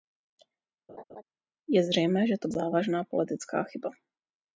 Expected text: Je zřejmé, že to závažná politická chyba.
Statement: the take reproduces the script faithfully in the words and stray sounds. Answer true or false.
false